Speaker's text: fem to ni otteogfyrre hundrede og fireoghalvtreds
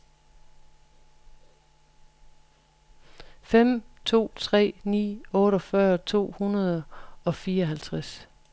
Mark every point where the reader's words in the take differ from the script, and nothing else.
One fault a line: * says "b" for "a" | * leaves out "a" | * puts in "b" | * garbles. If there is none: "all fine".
* puts in "tre"
* puts in "to"